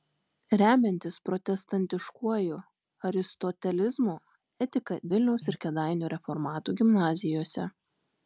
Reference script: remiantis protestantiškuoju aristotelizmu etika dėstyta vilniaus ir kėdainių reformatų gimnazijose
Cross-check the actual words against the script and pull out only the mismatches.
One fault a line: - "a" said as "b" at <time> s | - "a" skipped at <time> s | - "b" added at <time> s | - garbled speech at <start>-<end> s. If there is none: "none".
- "dėstyta" skipped at 5.0 s